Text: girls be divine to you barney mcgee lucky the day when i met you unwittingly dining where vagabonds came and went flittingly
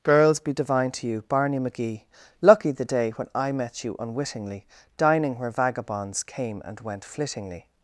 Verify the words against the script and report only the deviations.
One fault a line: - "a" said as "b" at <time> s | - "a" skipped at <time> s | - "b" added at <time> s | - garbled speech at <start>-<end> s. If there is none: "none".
none